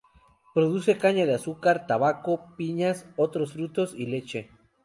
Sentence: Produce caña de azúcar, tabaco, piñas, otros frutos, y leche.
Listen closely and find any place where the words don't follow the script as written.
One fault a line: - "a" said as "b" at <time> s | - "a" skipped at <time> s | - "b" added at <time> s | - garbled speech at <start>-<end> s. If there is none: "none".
none